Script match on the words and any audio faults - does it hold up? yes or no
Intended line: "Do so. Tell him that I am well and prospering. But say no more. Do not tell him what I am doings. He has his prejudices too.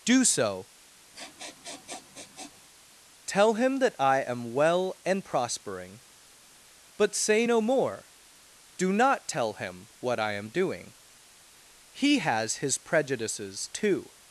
no